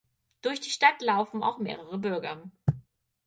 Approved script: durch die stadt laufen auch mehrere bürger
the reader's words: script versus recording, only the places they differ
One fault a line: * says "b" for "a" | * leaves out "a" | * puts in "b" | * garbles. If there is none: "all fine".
all fine